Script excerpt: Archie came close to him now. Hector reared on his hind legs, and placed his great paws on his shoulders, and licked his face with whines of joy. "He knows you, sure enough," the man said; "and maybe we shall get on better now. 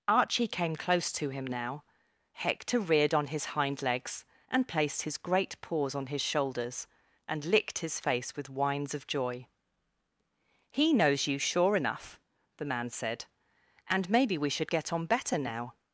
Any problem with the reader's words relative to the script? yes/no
yes